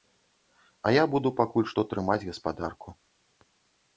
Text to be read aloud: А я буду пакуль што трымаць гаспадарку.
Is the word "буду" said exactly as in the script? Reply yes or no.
yes